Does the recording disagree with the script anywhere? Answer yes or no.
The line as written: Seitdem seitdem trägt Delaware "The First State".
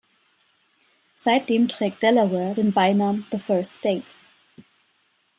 yes